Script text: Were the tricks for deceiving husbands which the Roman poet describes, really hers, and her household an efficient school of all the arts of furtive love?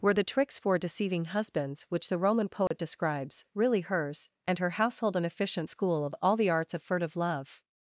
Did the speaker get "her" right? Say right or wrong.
right